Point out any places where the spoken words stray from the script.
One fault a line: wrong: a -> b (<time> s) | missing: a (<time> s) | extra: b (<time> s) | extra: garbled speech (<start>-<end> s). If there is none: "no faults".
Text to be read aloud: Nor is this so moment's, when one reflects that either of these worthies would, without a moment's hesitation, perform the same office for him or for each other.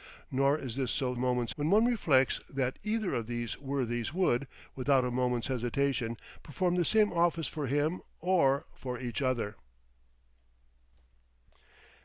no faults